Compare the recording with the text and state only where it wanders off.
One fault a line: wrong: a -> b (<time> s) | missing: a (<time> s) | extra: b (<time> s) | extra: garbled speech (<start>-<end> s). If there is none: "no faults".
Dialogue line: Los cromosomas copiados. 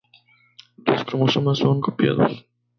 extra: son (1.6 s)